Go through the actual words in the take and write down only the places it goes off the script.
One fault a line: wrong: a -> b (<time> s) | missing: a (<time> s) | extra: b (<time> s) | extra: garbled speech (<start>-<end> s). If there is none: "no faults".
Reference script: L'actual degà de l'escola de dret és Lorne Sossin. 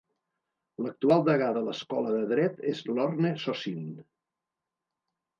no faults